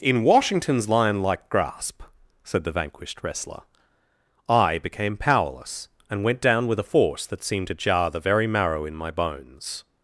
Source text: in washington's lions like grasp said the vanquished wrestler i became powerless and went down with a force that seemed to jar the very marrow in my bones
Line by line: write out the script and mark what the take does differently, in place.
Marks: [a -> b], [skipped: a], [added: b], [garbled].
in washington's [lions -> lion] like grasp said the vanquished wrestler i became powerless and went down with a force that seemed to jar the very marrow in my bones